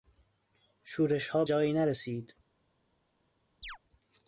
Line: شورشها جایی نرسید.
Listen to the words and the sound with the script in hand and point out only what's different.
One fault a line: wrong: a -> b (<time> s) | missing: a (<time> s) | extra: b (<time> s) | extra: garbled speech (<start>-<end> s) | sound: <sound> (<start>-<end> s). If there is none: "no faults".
sound: chirp (3.6-3.8 s)